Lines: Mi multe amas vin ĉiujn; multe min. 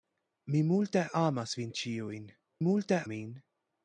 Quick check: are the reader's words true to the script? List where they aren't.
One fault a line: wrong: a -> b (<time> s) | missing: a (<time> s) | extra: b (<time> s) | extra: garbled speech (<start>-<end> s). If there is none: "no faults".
no faults